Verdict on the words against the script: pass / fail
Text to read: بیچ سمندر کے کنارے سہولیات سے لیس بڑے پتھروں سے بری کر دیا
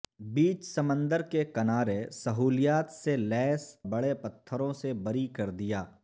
pass